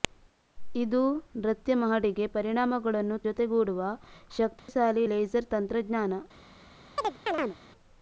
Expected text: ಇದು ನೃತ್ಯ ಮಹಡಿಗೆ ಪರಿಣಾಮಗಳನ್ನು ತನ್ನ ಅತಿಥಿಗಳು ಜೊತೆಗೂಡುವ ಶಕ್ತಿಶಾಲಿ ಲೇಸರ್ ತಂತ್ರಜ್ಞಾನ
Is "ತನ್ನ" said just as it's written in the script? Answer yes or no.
no